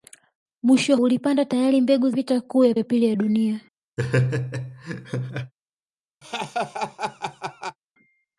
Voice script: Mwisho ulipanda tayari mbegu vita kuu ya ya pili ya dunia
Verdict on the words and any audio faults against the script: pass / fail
fail